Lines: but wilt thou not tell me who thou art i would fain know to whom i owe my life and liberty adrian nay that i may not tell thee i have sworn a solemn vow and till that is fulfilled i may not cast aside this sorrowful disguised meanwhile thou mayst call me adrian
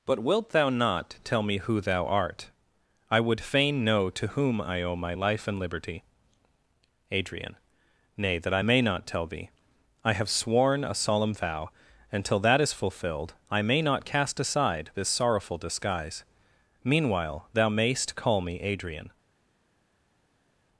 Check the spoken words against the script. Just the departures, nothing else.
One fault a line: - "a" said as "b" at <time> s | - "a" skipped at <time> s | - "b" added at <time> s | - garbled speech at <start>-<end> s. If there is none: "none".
- "disguised" said as "disguise" at 15.6 s